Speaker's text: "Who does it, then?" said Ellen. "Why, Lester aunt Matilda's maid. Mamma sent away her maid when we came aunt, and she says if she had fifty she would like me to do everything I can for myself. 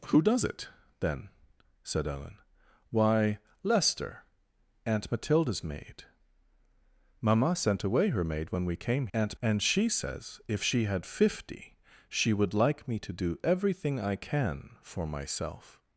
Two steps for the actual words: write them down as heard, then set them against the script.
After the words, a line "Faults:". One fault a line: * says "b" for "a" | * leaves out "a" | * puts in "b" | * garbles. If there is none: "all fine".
"Who does it, then?" said Ellen. "Why, Lester aunt Matilda's maid. Mamma sent away her maid when we came aunt, and she says if she had fifty she would like me to do everything I can for myself.
Faults:
all fine